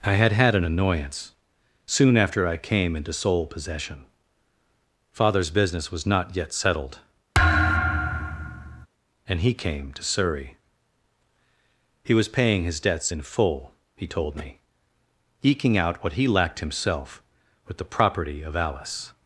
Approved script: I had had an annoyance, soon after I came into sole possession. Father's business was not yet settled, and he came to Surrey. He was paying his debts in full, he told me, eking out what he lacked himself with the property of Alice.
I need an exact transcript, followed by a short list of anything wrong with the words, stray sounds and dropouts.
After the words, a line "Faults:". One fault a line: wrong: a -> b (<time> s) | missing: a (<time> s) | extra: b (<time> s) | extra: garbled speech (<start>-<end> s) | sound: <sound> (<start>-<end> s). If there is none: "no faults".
I had had an annoyance, soon after I came into sole possession. Father's business was not yet settled, and he came to Surrey. He was paying his debts in full, he told me, eking out what he lacked himself with the property of Alice.
Faults:
sound: thud (7.3-8.9 s)